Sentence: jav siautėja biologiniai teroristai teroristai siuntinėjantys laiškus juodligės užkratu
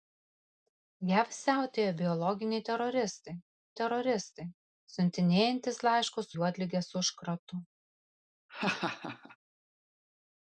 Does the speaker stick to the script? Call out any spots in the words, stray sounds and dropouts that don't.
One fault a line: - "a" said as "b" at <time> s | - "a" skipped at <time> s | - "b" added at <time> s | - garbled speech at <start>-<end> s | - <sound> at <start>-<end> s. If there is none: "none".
- laugh at 8.5-9.4 s